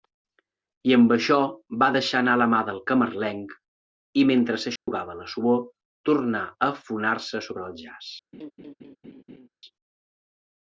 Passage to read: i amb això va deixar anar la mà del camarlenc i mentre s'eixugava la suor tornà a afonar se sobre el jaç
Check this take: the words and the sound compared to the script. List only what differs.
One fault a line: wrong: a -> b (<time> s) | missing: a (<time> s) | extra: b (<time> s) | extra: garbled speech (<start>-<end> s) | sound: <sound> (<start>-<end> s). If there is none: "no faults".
sound: dropout (4.8-4.9 s)
sound: laugh (8.3-9.5 s)